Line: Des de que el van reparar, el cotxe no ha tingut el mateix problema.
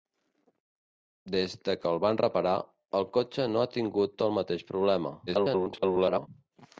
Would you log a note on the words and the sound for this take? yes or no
yes